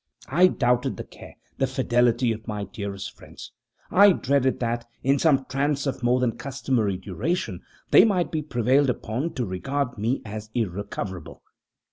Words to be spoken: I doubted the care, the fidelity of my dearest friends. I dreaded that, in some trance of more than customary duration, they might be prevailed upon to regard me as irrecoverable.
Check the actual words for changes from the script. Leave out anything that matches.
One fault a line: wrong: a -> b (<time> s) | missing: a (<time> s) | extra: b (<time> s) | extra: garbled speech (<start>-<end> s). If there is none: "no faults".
no faults